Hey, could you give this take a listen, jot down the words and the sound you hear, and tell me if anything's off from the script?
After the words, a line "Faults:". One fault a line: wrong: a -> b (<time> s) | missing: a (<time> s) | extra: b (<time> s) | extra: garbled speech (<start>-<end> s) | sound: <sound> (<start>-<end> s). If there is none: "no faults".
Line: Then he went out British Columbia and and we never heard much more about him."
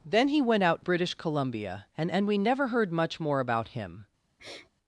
Then he went out British Columbia and and we never heard much more about him."
Faults:
sound: sniff (4.4-4.7 s)